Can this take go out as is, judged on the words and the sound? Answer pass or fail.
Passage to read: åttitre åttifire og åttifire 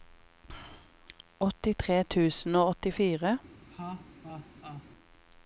fail